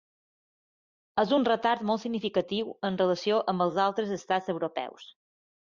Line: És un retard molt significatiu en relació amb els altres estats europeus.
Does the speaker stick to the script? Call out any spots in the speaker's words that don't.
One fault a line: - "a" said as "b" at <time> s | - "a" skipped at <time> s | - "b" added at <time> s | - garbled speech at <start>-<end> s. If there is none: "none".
none